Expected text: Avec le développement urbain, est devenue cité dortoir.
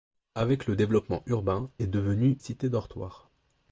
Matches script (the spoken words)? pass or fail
pass